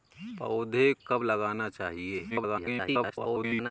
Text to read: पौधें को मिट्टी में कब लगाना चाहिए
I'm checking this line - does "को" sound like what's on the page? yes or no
no